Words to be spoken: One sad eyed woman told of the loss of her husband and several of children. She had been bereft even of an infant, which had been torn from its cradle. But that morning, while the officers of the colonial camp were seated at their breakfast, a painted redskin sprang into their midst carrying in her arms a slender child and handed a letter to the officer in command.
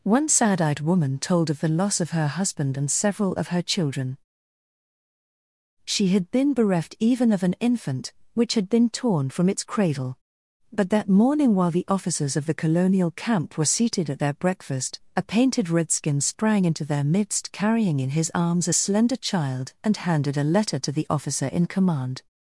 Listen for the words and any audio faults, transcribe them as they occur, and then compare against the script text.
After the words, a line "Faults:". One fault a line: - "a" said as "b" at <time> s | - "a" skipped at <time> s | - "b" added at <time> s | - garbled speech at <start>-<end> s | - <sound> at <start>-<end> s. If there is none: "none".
One sad eyed woman told of the loss of her husband and several of her children. She had been bereft even of an infant, which had been torn from its cradle. But that morning, while the officers of the colonial camp were seated at their breakfast, a painted redskin sprang into their midst carrying in his arms a slender child and handed a letter to the officer in command.
Faults:
- "her" added at 3.5 s
- "her" said as "his" at 18.1 s